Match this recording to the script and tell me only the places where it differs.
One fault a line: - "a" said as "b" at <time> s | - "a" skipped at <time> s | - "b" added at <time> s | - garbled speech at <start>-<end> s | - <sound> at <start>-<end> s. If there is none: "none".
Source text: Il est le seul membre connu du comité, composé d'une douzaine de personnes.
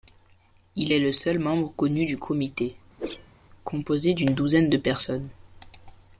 - whoosh at 3.0-3.3 s